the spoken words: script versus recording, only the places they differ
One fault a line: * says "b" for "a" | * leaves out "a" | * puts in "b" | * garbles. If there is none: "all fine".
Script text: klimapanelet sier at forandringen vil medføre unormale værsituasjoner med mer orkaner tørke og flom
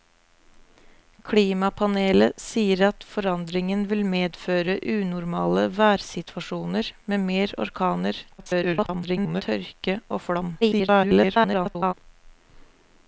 * garbles
* garbles